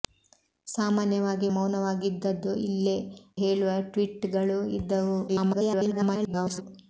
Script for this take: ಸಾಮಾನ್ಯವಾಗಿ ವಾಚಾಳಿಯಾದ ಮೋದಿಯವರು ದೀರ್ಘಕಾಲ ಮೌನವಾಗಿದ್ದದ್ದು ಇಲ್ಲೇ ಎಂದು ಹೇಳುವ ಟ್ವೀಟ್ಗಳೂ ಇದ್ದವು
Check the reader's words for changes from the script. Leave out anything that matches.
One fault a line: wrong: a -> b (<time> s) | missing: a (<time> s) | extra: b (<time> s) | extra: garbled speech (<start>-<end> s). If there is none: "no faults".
missing: ವಾಚಾಳಿಯಾದ ಮೋದಿಯವರು ದೀರ್ಘಕಾಲ (1.5 s)
missing: ಎಂದು (3.0 s)
extra: garbled speech (5.3-6.6 s)